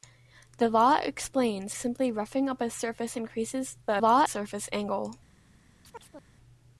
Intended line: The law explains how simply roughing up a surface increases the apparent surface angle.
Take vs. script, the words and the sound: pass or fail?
fail